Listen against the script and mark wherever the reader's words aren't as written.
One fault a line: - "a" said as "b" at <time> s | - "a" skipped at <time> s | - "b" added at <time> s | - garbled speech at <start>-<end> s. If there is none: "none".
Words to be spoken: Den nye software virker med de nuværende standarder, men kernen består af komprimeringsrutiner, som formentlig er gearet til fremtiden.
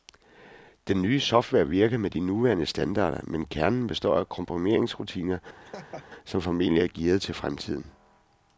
none